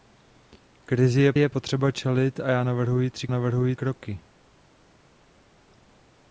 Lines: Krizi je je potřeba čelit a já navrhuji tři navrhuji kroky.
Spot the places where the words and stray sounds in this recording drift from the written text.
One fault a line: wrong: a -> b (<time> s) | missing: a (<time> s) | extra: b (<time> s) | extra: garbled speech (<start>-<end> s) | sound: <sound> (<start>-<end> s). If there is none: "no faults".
no faults